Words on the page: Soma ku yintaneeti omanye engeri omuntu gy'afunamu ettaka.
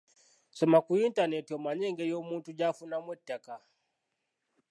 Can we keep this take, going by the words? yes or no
yes